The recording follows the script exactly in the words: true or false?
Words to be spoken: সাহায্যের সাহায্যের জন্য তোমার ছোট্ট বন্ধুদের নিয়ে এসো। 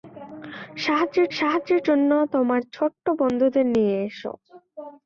true